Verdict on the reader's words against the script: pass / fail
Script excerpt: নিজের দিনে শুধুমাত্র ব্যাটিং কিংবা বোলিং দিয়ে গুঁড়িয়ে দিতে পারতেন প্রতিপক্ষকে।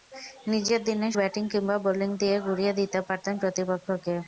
fail